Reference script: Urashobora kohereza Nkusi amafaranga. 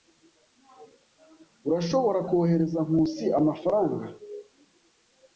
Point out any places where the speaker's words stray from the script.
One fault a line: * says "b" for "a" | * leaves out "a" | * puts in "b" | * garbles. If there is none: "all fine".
all fine